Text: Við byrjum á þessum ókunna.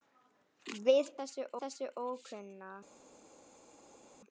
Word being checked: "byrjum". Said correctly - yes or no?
no